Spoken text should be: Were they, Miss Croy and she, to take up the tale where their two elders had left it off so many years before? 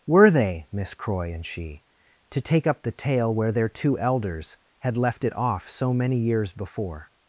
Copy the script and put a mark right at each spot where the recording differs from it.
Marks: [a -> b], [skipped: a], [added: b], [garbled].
Were they, Miss Croy and she, to take up the tale where their two elders had left it off so many years before?